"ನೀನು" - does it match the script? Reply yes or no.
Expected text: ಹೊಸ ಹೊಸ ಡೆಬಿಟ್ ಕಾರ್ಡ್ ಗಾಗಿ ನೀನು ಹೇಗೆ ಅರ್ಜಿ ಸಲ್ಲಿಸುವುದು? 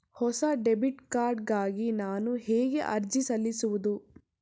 no